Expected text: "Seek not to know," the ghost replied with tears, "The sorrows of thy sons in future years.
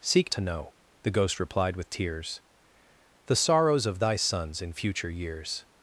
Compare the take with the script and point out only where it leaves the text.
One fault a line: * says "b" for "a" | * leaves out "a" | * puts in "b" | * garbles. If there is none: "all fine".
* leaves out "not"